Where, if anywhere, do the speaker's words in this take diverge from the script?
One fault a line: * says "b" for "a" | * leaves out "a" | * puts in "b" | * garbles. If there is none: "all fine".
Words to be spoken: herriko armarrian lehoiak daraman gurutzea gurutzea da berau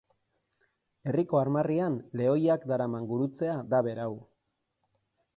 * leaves out "gurutzea"